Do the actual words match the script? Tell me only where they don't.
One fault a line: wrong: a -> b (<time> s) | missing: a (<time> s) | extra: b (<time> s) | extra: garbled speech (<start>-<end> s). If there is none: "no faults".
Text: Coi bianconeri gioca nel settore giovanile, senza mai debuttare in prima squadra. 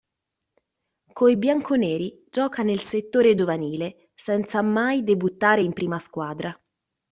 no faults